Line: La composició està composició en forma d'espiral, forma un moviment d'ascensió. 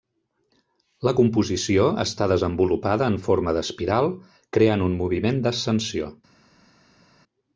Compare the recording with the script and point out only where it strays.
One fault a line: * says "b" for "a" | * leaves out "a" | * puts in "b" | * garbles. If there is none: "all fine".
* says "desenvolupada" for "composició"
* says "creant" for "forma"